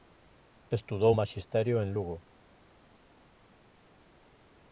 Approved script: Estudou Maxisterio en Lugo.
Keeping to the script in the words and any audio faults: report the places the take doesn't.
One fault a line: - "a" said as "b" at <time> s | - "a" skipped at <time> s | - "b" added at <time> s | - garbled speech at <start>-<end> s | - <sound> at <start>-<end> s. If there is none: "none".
none